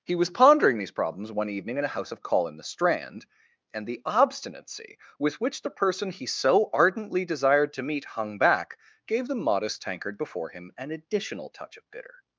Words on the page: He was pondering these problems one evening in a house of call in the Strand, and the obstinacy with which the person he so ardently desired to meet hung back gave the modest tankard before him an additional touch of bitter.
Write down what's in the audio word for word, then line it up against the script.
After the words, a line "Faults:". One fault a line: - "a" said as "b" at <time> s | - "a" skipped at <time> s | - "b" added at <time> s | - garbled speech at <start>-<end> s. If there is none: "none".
He was pondering these problems one evening in a house of call in the Strand, and the obstinacy with which the person he so ardently desired to meet hung back gave the modest tankard before him an additional touch of bitter.
Faults:
none